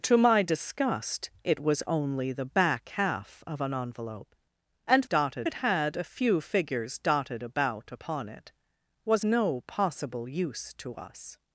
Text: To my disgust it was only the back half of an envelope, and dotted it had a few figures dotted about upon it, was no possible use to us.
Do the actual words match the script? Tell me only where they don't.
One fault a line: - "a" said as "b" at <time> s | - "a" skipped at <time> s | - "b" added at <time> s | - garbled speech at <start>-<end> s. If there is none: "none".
none